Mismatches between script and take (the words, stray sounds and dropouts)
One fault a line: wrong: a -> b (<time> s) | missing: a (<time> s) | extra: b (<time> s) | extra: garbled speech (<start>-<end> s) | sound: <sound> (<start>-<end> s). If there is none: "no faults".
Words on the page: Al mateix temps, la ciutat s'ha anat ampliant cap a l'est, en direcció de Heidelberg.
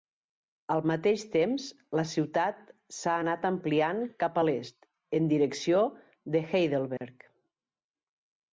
sound: dropout (7.0-7.0 s)